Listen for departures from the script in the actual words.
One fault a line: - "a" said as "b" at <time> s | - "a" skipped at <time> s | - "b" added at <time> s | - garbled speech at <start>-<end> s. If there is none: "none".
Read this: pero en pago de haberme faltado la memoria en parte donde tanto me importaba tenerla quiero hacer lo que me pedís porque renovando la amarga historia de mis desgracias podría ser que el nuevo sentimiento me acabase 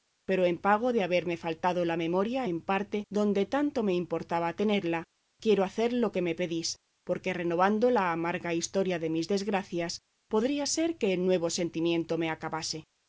none